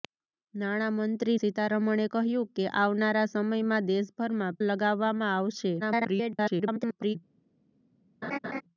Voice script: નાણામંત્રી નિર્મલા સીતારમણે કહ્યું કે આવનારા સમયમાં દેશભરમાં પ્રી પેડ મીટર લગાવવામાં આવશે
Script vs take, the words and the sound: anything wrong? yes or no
yes